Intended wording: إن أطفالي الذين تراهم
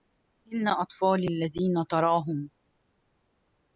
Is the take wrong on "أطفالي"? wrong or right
right